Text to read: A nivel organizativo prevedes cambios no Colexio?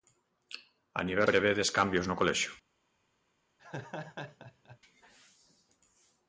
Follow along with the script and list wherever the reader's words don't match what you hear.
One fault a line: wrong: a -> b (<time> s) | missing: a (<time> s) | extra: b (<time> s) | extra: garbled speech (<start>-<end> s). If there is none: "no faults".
missing: organizativo (1.3 s)